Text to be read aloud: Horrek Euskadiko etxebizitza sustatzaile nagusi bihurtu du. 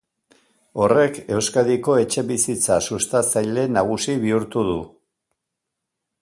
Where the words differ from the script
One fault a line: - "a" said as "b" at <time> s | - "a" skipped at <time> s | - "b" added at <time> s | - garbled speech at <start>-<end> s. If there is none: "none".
none